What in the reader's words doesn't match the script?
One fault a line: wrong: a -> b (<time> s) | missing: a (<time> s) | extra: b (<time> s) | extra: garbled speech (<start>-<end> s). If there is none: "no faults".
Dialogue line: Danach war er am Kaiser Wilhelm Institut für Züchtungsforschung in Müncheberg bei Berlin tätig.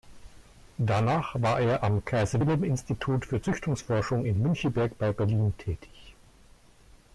no faults